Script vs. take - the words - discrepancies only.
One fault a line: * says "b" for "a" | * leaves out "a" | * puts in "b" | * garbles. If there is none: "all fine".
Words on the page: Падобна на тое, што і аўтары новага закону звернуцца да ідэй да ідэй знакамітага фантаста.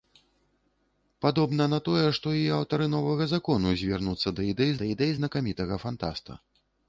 all fine